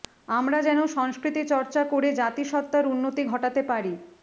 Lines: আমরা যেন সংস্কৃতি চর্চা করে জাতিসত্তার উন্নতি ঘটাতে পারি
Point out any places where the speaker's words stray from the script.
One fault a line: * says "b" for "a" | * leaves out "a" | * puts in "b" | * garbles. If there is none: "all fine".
all fine